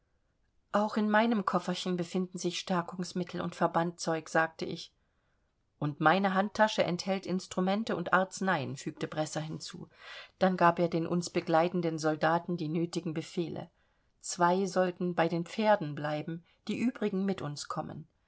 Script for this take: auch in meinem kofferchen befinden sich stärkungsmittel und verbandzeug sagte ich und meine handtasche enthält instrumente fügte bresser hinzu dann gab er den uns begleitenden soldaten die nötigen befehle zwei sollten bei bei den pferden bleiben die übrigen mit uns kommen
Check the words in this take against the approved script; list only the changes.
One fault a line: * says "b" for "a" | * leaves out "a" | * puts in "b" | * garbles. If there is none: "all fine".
* puts in "und arzneien"
* leaves out "bei"